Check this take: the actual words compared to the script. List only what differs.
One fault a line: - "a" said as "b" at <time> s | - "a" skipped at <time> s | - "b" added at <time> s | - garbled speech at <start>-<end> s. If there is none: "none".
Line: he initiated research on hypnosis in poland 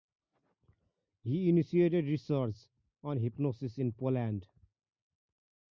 none